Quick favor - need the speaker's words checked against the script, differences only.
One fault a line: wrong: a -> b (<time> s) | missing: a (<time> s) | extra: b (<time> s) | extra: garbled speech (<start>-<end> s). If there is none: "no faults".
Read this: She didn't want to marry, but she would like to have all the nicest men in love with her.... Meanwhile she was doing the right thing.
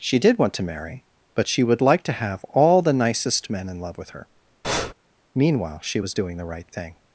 wrong: didn't -> did (0.2 s)